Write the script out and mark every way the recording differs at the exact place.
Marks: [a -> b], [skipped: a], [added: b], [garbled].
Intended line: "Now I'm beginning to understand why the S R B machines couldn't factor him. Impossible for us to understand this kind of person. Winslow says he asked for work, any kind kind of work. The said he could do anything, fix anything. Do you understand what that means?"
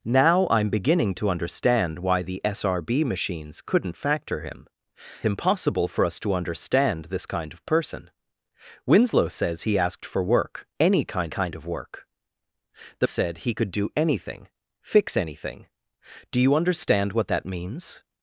"Now I'm beginning to understand why the S R B machines couldn't factor him. Impossible for us to understand this kind of person. Winslow says he asked for work, any kind kind of work. The said he could do anything, fix anything. Do you understand what that means?"